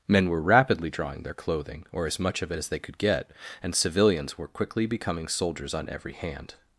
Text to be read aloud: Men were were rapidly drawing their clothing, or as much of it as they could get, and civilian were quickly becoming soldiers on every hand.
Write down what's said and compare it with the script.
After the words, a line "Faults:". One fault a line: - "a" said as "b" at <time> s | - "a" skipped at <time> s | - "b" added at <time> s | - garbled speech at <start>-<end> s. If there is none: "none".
Men were rapidly drawing their clothing, or as much of it as they could get, and civilians were quickly becoming soldiers on every hand.
Faults:
- "were" skipped at 0.4 s
- "civilian" said as "civilians" at 3.8 s